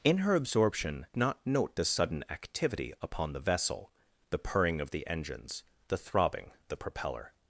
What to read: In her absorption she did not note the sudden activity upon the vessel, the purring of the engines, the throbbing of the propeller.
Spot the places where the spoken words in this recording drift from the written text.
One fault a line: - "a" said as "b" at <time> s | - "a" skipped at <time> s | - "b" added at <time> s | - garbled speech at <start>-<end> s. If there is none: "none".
- "she did" skipped at 1.1 s
- "of" skipped at 6.5 s